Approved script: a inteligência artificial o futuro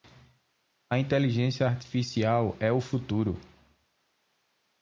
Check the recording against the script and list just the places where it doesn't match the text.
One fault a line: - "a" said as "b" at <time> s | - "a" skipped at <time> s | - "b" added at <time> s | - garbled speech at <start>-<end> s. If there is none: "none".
- "é" added at 2.6 s